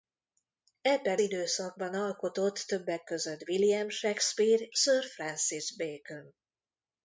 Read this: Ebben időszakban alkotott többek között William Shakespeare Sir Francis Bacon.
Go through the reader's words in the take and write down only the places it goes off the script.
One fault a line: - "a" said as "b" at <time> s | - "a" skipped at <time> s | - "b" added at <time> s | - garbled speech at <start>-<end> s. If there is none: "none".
none